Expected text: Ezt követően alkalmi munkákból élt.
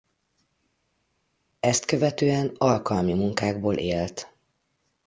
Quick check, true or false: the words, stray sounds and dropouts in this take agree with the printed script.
true